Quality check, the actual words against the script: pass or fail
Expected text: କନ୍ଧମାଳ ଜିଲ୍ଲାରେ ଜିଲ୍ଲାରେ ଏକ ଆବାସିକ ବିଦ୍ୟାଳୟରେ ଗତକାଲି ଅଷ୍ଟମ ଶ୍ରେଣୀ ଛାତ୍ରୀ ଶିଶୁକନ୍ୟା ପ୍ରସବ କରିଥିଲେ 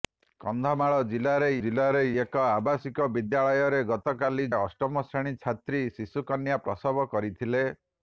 pass